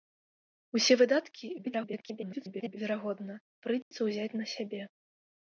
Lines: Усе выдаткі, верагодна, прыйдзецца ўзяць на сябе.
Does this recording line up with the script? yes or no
no